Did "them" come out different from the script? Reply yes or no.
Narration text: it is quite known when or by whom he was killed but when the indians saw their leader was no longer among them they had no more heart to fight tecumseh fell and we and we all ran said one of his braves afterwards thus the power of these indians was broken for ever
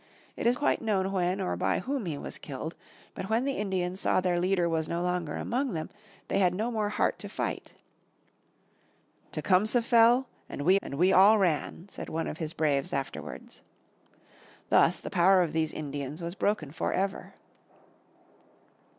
no